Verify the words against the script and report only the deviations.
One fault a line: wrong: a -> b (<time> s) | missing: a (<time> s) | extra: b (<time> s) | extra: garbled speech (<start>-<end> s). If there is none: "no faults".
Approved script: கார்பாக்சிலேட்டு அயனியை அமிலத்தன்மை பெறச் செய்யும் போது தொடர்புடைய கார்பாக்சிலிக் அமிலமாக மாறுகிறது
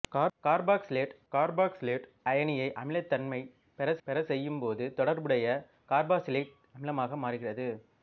extra: கார்பாக்சிலேட்டு (1.3 s)
extra: பெறச் (4.1 s)